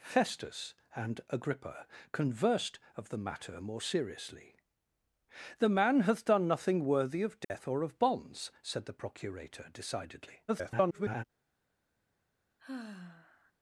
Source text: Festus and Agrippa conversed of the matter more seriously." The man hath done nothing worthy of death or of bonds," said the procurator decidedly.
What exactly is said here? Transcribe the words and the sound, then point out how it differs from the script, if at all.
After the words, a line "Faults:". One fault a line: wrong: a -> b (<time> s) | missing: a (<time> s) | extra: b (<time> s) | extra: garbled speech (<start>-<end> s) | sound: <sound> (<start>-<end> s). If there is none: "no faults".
Festus and Agrippa conversed of the matter more seriously." The man hath done nothing worthy of death or of bonds," said the procurator decidedly. [garbled]
Faults:
sound: dropout (7.4-7.5 s)
extra: garbled speech (10.5-11.2 s)
sound: sigh (12.6-13.5 s)